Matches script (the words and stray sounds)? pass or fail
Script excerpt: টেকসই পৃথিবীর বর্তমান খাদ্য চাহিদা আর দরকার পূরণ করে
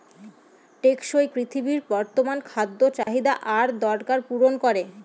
fail